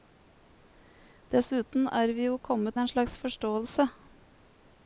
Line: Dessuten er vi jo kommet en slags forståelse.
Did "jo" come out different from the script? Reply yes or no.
no